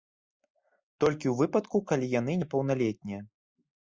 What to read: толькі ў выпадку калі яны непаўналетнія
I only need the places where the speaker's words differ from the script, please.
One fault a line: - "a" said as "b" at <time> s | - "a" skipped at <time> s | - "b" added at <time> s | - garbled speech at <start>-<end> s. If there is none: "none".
none